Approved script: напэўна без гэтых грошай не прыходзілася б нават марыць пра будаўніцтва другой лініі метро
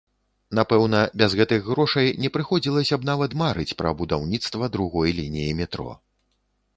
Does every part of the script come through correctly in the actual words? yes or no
yes